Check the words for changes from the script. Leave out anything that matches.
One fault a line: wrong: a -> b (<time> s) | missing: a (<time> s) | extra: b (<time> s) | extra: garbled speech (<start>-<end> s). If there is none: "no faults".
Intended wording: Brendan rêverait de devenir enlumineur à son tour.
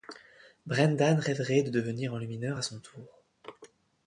no faults